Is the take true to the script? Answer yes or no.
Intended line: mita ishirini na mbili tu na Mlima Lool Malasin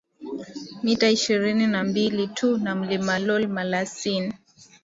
yes